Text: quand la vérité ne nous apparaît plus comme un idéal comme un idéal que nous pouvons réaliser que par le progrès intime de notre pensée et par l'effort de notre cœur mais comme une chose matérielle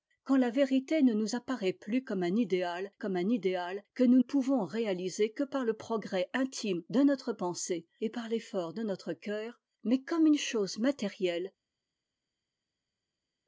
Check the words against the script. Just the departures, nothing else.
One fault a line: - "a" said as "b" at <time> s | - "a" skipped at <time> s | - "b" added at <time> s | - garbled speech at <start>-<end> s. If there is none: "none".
none